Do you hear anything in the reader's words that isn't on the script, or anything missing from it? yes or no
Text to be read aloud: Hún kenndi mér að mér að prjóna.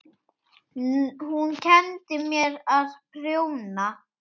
yes